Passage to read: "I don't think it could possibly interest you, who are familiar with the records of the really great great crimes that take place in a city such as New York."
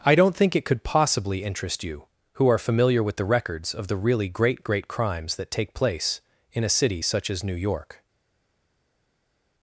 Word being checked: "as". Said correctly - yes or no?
yes